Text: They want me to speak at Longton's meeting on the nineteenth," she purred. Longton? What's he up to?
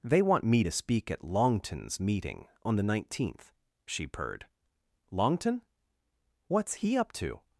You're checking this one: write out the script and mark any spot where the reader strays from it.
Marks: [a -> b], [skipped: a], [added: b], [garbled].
They want me to speak at Longton's meeting on the nineteenth," she purred. Longton? What's he up to?